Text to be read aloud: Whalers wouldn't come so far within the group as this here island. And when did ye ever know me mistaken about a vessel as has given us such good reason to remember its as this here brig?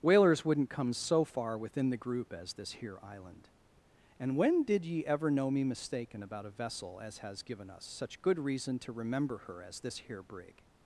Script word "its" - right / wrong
wrong